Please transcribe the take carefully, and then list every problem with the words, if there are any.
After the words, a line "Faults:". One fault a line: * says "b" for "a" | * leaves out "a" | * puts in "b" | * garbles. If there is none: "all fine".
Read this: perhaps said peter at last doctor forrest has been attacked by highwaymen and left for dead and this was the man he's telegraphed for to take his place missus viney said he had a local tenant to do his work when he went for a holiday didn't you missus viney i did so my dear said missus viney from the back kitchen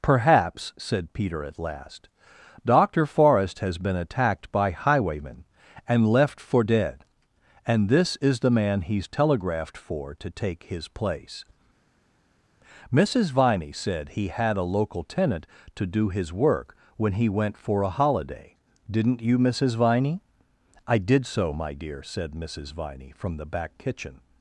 perhaps said peter at last doctor forrest has been attacked by highwaymen and left for dead and this is the man he's telegraphed for to take his place missus viney said he had a local tenant to do his work when he went for a holiday didn't you missus viney i did so my dear said missus viney from the back kitchen
Faults:
* says "is" for "was"